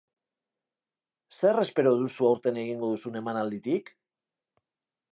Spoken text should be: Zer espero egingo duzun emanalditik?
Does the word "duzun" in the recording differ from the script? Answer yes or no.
no